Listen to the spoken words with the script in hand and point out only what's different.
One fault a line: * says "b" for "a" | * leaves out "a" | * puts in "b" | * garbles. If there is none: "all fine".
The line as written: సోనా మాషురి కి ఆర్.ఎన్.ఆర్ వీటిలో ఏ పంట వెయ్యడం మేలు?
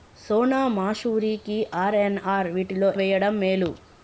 * leaves out "ఏ పంట"